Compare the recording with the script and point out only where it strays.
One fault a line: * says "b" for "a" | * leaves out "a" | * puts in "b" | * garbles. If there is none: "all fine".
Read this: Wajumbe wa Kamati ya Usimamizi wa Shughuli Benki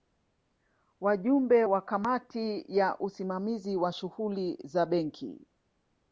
* puts in "za"